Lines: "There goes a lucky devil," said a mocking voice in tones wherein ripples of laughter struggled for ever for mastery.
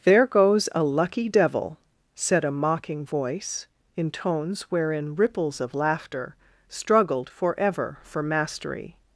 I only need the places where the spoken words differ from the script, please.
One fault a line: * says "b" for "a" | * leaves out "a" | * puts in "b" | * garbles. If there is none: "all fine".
all fine